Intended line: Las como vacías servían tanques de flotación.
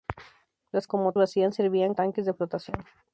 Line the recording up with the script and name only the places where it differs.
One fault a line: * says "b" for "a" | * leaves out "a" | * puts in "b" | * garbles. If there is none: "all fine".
all fine